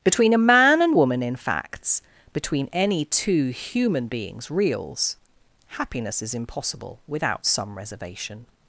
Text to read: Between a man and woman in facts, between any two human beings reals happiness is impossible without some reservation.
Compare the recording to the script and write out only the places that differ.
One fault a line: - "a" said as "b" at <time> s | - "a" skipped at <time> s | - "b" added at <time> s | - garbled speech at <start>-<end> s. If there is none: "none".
none